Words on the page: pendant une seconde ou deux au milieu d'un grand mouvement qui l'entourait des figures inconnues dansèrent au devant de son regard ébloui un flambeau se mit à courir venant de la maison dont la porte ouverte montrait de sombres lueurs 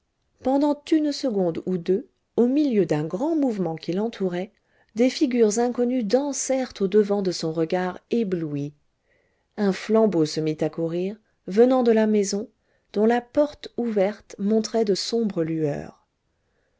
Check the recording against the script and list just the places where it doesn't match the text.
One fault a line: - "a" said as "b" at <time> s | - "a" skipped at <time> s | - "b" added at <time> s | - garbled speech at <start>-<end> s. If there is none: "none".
none